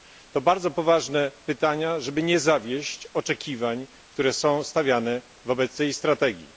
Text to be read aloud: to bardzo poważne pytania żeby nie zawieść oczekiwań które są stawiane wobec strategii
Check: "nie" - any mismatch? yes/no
no